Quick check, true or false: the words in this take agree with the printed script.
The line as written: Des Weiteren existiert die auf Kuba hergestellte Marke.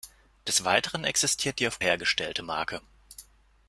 false